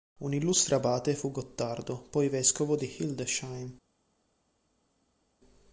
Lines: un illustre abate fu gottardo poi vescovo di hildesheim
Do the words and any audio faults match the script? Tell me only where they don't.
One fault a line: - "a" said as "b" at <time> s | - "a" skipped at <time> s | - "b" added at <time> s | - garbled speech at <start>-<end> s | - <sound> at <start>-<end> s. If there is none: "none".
none